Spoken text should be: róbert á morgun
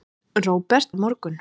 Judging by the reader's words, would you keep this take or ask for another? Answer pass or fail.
pass